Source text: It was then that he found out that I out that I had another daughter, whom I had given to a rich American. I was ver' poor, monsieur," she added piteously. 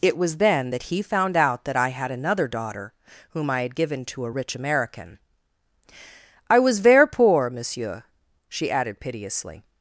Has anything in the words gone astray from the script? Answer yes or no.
yes